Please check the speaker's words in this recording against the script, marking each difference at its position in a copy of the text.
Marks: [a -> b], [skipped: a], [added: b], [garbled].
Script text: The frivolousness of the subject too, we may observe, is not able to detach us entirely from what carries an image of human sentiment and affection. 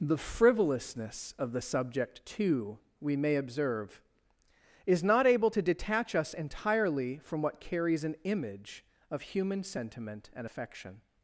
The frivolousness of the subject too, we may observe, is not able to detach us entirely from what carries an image of human sentiment and affection.